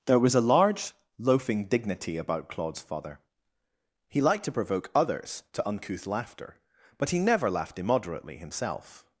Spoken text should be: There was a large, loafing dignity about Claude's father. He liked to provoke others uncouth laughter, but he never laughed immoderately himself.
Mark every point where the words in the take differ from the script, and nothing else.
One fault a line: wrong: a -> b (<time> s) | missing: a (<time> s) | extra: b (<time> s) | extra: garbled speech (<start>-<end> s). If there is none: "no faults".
extra: to (5.5 s)